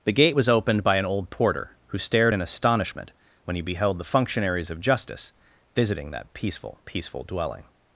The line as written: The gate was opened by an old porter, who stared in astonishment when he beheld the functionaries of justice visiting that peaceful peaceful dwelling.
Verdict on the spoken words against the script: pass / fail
pass